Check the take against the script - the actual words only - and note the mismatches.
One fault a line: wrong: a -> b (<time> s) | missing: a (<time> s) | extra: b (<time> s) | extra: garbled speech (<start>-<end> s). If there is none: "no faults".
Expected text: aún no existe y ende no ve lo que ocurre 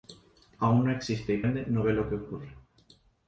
no faults